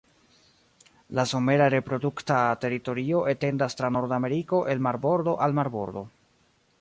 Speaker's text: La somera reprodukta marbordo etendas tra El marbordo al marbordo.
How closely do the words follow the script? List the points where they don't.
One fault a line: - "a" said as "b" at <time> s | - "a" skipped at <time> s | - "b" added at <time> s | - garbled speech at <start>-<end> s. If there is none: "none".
- "marbordo" said as "teritorio" at 2.6 s
- "Nordameriko" added at 4.0 s